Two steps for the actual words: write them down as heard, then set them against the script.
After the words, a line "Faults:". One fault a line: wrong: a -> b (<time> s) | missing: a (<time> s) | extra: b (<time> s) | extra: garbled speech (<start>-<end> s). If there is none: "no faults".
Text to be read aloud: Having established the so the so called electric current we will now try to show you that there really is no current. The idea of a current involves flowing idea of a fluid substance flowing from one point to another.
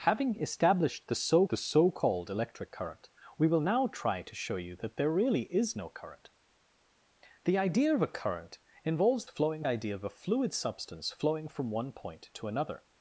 Having established the so the so called electric current we will now try to show you that there really is no current. The idea of a current involves flowing idea of a fluid substance flowing from one point to another.
Faults:
no faults